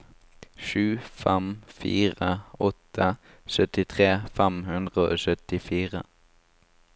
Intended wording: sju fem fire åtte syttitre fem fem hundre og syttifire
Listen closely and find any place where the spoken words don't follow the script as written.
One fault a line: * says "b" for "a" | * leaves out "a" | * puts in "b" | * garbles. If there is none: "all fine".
* leaves out "fem"